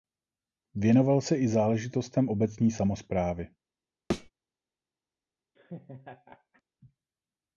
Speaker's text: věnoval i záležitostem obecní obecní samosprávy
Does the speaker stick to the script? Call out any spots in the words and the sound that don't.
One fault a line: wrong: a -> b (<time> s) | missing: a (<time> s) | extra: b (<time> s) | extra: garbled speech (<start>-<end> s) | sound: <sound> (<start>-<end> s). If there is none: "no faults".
extra: se (1.2 s)
missing: obecní (2.7 s)
sound: thud (4.1-4.3 s)
sound: laugh (5.6-6.6 s)